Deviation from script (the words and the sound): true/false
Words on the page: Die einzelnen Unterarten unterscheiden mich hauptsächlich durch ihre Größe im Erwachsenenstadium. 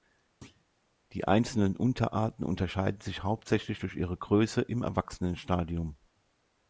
true